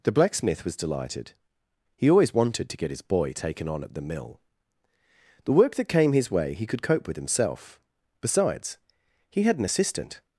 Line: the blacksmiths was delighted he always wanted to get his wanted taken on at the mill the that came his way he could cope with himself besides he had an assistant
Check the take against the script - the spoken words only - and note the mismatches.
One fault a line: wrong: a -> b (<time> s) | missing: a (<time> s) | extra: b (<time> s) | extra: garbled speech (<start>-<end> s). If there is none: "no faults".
wrong: blacksmiths -> blacksmith (0.1 s)
wrong: wanted -> boy (3.0 s)
extra: work (5.5 s)